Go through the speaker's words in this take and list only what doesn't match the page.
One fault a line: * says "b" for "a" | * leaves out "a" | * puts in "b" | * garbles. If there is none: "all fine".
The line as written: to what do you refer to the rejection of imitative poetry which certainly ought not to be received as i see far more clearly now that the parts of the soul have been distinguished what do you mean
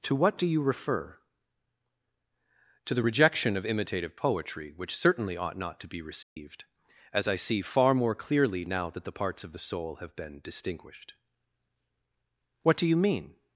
all fine